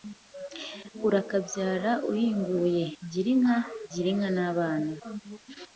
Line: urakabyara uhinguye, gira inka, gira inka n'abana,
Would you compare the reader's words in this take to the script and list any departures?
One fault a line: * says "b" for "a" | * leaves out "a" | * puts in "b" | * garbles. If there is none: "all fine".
all fine